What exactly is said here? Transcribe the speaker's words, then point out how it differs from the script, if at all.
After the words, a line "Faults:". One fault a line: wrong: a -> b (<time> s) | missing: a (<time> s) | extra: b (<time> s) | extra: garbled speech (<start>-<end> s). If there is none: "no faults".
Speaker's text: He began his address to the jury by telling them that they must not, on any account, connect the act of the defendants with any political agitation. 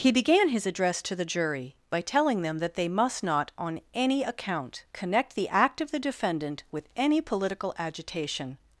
He began his address to the jury by telling them that they must not, on any account, connect the act of the defendant with any political agitation.
Faults:
wrong: defendants -> defendant (6.0 s)